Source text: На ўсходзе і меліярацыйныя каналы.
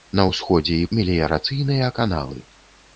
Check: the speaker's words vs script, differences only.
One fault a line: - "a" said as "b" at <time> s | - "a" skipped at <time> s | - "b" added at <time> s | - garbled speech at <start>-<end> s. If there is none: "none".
none